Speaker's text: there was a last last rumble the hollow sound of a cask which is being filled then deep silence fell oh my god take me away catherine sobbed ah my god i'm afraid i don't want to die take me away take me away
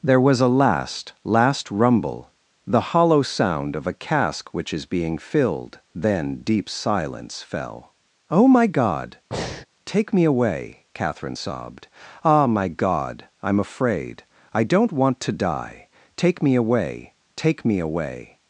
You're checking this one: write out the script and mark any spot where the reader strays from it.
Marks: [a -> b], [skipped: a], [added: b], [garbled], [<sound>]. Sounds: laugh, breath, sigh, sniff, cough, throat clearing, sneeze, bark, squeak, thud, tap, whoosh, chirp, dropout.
there was a last last rumble the hollow sound of a cask which is being filled then deep silence fell oh my god [breath] take me away catherine sobbed ah my god i'm afraid i don't want to die take me away take me away